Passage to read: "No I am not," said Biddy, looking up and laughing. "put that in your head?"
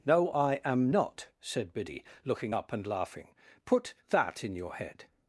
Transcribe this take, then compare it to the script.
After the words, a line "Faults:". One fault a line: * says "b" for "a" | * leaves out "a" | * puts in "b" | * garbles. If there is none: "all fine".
"No I am not," said Biddy, looking up and laughing. "put that in your head?"
Faults:
all fine